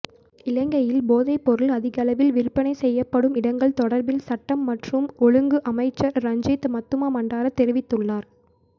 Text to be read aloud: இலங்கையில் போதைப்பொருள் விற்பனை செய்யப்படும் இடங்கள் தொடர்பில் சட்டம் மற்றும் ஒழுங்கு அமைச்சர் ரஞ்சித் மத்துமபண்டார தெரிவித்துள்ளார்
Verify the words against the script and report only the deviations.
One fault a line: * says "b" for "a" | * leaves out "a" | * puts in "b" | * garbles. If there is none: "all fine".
* puts in "அதிகளவில்"